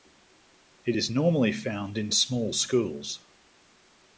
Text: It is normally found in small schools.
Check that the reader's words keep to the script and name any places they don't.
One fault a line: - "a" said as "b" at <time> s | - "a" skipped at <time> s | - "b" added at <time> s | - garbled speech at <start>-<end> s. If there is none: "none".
none